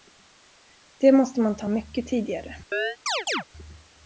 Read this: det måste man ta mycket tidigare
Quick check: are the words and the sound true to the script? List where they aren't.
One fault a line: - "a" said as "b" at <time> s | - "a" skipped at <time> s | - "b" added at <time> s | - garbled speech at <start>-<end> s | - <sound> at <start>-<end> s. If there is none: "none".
- chirp at 2.7-3.4 s